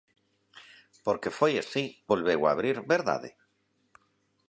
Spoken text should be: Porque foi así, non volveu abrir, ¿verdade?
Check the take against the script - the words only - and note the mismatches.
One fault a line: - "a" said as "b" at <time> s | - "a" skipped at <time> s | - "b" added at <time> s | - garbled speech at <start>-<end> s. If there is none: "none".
- "non" skipped at 1.9 s